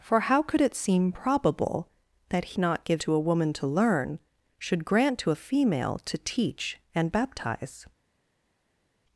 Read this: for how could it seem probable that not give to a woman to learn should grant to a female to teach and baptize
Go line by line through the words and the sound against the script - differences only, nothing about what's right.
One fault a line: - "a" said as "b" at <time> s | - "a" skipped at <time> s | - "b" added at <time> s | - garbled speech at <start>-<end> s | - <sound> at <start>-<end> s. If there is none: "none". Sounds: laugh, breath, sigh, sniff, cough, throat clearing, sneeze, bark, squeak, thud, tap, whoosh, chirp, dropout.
none